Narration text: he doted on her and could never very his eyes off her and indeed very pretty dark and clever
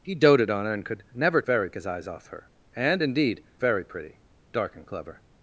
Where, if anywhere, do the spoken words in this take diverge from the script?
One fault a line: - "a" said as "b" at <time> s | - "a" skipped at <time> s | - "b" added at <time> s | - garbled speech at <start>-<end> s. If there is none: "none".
none